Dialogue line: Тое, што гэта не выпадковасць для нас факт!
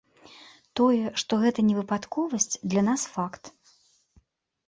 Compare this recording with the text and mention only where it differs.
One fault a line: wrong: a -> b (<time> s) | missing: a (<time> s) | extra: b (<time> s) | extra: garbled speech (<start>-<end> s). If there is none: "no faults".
no faults